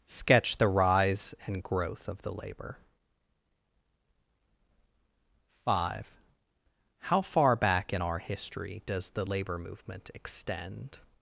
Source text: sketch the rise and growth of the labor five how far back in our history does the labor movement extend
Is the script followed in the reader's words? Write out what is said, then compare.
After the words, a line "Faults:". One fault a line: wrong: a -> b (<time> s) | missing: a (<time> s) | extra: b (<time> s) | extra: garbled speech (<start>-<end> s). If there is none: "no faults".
sketch the rise and growth of the labor five how far back in our history does the labor movement extend
Faults:
no faults